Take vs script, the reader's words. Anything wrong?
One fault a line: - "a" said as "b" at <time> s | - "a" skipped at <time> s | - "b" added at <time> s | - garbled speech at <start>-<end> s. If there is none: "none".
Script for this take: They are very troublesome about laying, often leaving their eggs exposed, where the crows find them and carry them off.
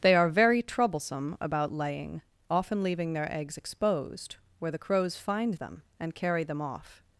none